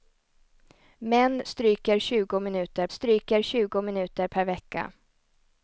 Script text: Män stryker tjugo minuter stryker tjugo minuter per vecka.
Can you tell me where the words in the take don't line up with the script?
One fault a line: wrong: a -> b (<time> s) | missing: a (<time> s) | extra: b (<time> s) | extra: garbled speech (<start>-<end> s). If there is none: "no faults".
no faults